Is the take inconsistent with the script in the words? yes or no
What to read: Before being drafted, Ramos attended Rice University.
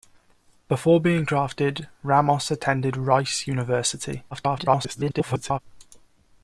yes